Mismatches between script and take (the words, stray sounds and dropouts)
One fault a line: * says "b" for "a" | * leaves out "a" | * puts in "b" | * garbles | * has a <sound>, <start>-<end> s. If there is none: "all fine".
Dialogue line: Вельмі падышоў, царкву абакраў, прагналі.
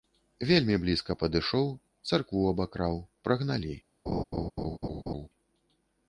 * puts in "блізка"
* has a laugh, 4.1-5.3 s